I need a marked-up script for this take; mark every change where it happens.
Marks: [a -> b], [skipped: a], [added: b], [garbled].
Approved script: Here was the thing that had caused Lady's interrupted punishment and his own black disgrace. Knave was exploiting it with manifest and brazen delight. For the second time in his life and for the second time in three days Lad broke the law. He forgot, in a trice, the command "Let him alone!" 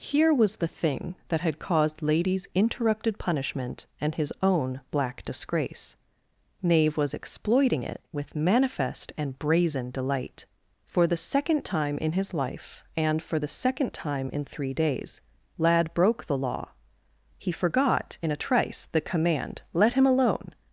Here was the thing that had caused Lady's interrupted punishment and his own black disgrace. Knave was exploiting it with manifest and brazen delight. For the second time in his life and for the second time in three days Lad broke the law. He forgot, in a trice, the command "Let him alone!"